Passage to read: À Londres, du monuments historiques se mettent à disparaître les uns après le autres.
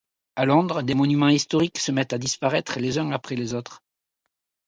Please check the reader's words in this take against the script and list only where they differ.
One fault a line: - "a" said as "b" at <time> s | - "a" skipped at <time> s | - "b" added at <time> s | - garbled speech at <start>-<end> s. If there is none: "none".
- "du" said as "des" at 0.8 s
- "le" said as "les" at 3.4 s